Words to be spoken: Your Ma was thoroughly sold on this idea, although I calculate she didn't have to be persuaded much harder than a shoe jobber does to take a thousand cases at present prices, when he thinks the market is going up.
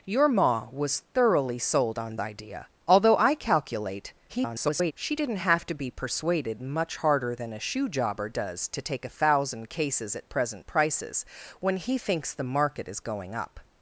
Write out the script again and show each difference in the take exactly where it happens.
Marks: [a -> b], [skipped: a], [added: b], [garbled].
Your Ma was thoroughly sold on [skipped: this] idea, although I calculate [garbled] she didn't have to be persuaded much harder than a shoe jobber does to take a thousand cases at present prices, when he thinks the market is going up.